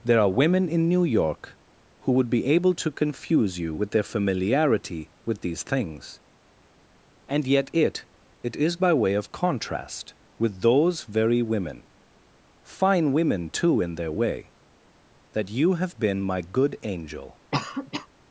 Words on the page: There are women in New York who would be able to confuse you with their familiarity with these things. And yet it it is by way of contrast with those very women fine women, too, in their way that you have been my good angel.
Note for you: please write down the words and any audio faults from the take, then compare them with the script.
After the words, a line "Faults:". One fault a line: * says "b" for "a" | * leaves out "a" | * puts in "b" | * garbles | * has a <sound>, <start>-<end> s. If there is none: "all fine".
There are women in New York who would be able to confuse you with their familiarity with these things. And yet it it is by way of contrast with those very women fine women, too, in their way that you have been my good angel.
Faults:
* has a cough, 17.5-18.1 s